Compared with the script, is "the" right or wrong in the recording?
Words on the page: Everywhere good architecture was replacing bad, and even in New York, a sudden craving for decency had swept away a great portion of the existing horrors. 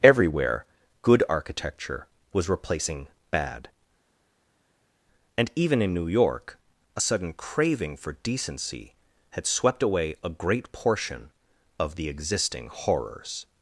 right